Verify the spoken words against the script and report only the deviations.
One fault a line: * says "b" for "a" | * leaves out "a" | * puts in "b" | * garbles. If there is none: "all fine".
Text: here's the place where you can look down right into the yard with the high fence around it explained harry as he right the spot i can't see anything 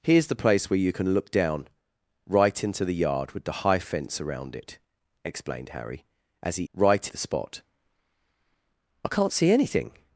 all fine